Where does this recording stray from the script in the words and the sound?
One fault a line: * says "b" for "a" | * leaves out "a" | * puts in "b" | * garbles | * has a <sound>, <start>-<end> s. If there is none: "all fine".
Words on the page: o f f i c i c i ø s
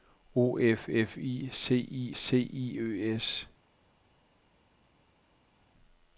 all fine